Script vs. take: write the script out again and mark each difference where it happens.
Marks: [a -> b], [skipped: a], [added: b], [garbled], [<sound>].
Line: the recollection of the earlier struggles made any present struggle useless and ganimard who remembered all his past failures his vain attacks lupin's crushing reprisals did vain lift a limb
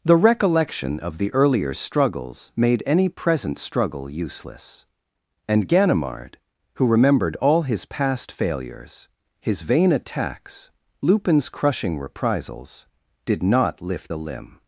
the recollection of the earlier struggles made any present struggle useless and ganimard who remembered all his past failures his vain attacks lupin's crushing reprisals did [vain -> not] lift a limb